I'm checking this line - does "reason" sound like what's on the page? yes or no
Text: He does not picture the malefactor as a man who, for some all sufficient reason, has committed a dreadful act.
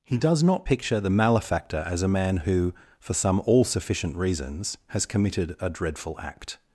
no